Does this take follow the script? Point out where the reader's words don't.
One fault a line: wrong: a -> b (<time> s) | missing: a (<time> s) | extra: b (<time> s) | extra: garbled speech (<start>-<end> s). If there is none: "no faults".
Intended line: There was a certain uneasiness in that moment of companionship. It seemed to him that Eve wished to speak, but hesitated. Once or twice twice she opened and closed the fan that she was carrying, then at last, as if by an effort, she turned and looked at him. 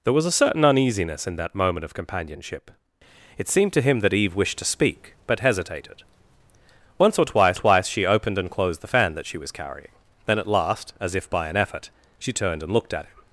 no faults